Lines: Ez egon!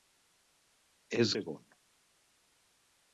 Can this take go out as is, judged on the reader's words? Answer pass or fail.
pass